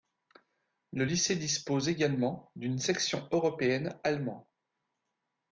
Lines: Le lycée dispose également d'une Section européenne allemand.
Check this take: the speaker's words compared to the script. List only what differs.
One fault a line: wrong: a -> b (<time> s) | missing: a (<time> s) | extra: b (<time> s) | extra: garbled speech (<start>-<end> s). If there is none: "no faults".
no faults